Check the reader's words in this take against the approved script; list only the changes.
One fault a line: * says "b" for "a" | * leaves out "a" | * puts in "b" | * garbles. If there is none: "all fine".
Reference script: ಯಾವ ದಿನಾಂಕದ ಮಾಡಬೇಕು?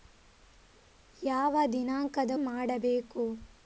all fine